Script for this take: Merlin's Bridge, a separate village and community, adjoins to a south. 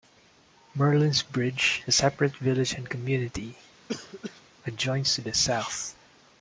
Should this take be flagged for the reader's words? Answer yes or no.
yes